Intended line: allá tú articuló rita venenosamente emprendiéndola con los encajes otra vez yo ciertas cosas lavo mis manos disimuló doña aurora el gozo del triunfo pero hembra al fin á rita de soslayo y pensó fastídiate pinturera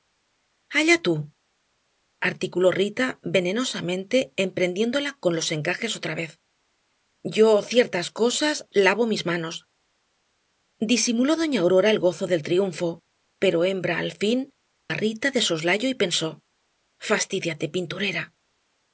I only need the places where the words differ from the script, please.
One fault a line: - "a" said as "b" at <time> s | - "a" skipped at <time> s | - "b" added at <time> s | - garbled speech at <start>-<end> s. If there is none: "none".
none